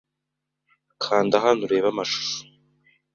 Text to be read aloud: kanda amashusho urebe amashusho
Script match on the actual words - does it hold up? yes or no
no